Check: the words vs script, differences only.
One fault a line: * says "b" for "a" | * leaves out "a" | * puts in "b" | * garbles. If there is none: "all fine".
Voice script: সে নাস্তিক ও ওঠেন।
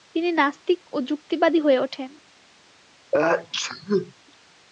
* says "তিনি" for "সে"
* puts in "যুক্তিবাদী হয়ে"